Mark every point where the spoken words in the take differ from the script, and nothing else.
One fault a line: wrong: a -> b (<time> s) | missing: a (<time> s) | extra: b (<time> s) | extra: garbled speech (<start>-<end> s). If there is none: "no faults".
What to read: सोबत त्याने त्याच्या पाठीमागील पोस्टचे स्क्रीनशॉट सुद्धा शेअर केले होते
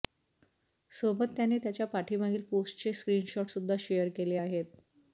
wrong: होते -> आहेत (4.4 s)